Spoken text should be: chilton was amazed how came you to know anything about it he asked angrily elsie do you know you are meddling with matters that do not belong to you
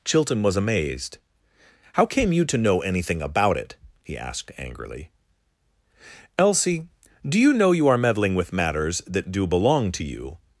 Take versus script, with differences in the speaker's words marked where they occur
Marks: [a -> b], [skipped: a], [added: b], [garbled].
chilton was amazed how came you to know anything about it he asked angrily elsie do you know you are meddling with matters that do [skipped: not] belong to you